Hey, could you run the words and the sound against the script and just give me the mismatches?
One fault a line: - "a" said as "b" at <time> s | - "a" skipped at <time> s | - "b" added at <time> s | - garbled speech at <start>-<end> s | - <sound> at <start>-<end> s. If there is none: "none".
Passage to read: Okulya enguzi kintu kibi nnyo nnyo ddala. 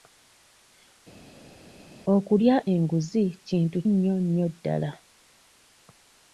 - "kibi" skipped at 3.8 s